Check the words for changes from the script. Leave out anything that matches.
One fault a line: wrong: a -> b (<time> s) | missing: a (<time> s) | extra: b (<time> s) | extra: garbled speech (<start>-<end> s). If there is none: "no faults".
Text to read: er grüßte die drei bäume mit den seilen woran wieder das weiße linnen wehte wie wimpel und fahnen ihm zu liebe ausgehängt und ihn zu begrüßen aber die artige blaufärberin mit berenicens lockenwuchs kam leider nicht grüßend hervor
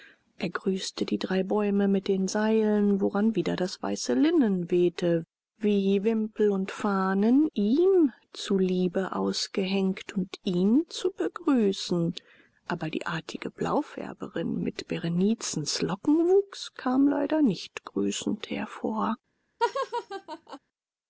no faults